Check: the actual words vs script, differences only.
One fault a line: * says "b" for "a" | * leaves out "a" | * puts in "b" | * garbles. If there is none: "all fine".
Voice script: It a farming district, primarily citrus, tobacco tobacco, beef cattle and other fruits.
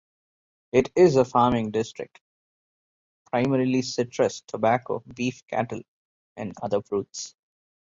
* puts in "is"
* leaves out "tobacco"